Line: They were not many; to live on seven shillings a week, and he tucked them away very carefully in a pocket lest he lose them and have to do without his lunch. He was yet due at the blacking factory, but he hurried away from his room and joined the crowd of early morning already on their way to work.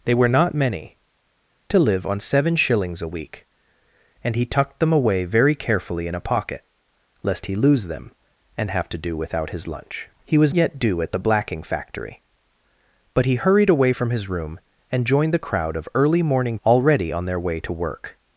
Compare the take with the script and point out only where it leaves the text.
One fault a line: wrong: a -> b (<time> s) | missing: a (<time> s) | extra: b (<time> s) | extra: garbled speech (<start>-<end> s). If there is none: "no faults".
no faults